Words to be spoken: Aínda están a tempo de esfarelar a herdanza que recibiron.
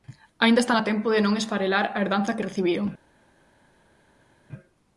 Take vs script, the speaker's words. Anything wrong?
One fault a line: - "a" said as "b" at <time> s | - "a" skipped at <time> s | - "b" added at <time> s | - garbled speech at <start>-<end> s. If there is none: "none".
- "non" added at 1.2 s